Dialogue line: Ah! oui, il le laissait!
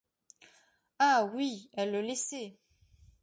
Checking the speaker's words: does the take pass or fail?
fail